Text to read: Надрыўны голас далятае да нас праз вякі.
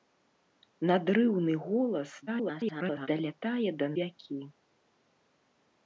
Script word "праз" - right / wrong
wrong